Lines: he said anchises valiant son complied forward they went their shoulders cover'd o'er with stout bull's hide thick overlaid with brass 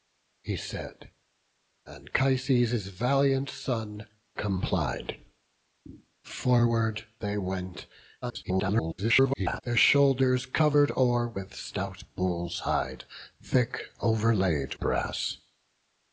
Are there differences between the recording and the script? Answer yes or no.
yes